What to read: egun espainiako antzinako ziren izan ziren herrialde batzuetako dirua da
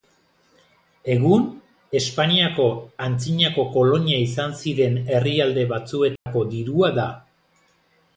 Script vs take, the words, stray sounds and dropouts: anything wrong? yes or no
yes